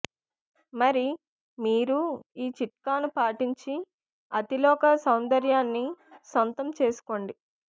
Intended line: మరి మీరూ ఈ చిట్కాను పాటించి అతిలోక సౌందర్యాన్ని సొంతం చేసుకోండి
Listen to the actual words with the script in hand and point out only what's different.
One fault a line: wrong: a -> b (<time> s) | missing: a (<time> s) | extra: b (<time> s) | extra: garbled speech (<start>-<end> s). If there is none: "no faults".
no faults